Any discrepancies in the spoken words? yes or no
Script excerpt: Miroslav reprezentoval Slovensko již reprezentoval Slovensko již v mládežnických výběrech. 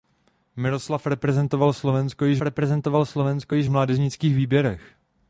no